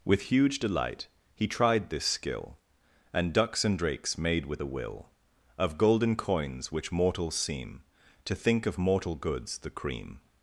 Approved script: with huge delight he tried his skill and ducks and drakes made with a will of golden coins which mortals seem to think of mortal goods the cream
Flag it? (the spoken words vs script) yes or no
yes